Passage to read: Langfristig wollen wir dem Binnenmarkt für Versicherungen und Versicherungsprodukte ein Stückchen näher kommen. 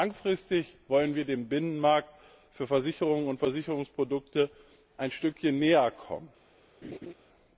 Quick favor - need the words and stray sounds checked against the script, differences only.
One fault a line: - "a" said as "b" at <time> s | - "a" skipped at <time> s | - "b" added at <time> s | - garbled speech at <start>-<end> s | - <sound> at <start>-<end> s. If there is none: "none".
- laugh at 6.8-7.1 s